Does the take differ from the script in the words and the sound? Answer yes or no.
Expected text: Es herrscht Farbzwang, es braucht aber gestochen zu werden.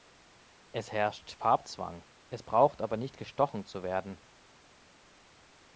yes